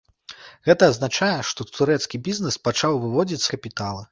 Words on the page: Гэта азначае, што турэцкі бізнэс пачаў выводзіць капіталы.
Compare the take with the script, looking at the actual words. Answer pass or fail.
pass